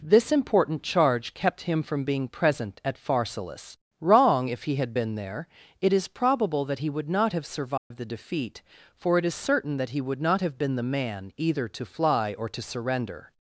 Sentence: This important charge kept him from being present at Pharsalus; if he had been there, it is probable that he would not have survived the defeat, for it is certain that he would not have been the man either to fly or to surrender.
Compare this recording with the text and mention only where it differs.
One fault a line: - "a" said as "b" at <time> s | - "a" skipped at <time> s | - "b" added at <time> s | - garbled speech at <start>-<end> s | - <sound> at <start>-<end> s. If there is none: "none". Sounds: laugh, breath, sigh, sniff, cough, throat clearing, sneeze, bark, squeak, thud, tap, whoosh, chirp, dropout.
- "wrong" added at 4.0 s
- dropout at 7.8-7.9 s